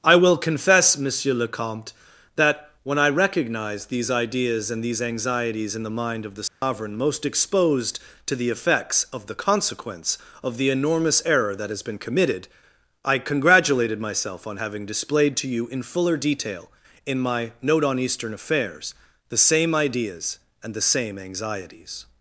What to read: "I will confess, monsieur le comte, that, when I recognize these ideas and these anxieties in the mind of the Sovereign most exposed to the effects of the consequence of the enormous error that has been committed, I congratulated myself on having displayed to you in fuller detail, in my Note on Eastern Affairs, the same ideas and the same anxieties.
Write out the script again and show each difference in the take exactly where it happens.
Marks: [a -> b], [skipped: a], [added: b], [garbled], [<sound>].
"I will confess, monsieur le comte, that, when I recognize these ideas and these anxieties in the mind of the Sovereign [dropout] most exposed to the effects of the consequence of the enormous error that has been committed, I congratulated myself on having displayed to you in fuller detail, in my Note on Eastern Affairs, the same ideas and the same anxieties.